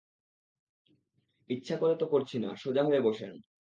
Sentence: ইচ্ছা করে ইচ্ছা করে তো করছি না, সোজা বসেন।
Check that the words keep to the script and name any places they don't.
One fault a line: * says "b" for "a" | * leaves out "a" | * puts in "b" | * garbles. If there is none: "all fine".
* leaves out "ইচ্ছা করে"
* puts in "হয়ে"